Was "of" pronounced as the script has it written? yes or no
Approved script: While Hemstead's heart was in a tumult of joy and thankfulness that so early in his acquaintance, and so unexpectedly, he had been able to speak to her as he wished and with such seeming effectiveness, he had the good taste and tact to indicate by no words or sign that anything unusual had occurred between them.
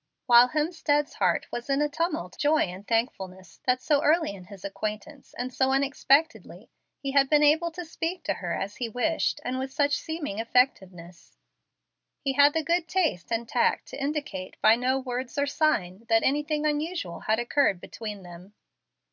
no